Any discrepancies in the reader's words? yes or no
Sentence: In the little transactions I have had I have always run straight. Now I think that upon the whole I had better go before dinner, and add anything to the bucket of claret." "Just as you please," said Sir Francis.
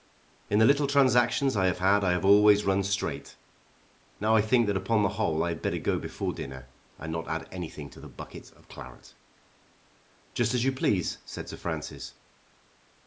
yes